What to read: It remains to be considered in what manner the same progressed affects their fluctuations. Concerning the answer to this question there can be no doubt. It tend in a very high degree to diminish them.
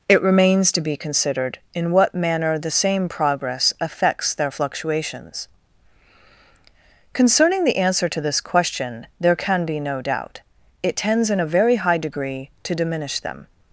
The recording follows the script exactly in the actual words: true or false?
false